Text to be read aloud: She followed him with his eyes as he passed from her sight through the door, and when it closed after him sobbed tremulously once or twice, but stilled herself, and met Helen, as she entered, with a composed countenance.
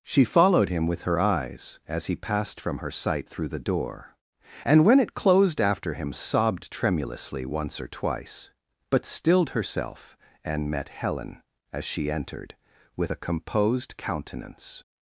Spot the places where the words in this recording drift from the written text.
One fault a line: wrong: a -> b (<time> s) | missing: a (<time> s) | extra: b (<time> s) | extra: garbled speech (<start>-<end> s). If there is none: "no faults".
wrong: his -> her (1.0 s)